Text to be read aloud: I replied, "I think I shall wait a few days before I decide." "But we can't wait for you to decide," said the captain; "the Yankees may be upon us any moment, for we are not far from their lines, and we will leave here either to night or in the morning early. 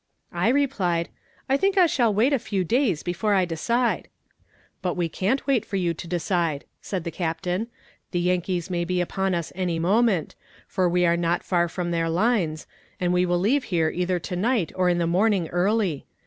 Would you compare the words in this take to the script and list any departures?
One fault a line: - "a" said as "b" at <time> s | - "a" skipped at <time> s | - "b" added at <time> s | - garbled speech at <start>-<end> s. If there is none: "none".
none